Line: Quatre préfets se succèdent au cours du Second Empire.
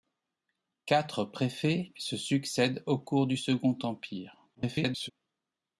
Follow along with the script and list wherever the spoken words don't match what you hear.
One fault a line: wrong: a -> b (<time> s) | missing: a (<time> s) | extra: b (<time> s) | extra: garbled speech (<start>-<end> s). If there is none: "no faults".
extra: garbled speech (4.5-5.1 s)